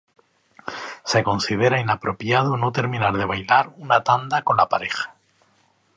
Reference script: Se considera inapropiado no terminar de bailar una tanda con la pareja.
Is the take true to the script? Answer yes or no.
yes